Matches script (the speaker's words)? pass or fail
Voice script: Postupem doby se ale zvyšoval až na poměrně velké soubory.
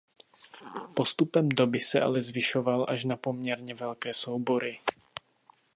pass